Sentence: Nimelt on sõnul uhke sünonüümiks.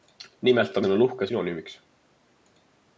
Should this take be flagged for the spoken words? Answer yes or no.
no